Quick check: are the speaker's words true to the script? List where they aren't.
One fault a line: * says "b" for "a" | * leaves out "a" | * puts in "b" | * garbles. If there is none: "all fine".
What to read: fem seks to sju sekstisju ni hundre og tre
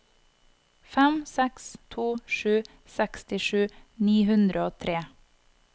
all fine